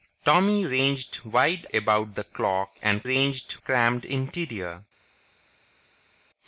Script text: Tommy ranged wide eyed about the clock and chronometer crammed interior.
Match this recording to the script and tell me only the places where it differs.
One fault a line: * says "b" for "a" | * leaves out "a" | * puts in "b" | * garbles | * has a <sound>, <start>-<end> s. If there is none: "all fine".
* leaves out "eyed"
* says "ranged" for "chronometer"